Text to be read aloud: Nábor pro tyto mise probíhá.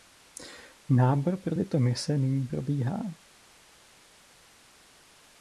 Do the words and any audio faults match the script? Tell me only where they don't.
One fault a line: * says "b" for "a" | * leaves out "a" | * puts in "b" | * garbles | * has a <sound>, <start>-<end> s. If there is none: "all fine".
* puts in "nyní"